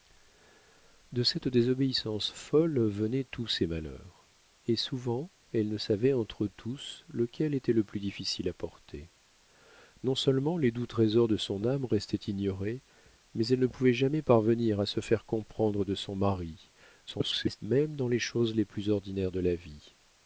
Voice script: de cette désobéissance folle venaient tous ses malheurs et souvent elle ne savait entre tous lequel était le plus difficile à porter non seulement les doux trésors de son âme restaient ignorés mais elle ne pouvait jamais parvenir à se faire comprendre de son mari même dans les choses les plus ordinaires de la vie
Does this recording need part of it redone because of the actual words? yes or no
yes